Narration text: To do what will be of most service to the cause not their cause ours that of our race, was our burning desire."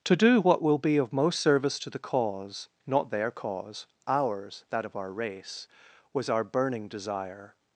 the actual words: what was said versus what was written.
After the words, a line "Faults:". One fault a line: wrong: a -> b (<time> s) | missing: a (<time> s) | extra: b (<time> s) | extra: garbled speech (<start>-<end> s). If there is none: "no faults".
To do what will be of most service to the cause not their cause ours that of our race, was our burning desire."
Faults:
no faults